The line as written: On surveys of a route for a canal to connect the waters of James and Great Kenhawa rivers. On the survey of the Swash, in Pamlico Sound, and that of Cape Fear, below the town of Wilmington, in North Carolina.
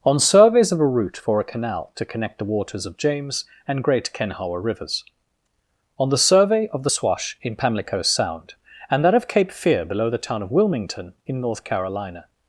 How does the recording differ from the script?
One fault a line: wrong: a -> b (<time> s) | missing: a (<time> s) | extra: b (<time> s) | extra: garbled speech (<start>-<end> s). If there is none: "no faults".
no faults